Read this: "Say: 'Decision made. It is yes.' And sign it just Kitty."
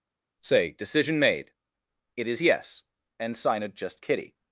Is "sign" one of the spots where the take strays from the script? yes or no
no